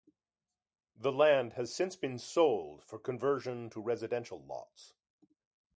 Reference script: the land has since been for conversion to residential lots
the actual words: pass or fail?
fail